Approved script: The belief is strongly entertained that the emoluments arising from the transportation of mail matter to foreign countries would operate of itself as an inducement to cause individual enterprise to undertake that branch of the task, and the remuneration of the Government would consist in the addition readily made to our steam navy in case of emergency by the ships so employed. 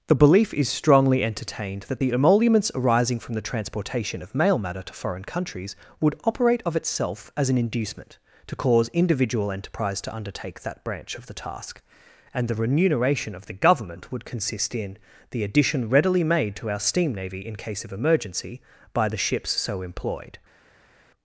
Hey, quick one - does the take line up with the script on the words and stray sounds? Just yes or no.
yes